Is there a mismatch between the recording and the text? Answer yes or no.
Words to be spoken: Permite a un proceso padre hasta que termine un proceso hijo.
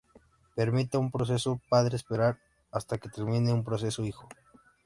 yes